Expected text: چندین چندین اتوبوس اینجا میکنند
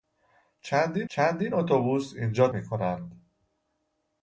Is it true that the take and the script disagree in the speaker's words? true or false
false